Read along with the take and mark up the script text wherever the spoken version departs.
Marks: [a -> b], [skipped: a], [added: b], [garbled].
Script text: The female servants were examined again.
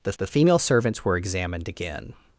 The [added: the] female servants were examined again.